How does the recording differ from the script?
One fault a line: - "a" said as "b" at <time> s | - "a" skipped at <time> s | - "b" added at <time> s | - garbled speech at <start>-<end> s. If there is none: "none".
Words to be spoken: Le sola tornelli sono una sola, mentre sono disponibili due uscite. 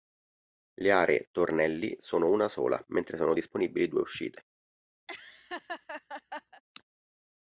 - "sola" said as "aree" at 0.9 s